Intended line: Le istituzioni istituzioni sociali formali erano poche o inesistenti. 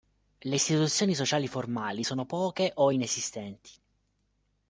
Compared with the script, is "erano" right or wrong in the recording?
wrong